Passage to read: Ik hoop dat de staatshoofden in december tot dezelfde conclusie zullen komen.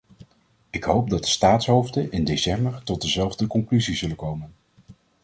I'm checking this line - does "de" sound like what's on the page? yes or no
yes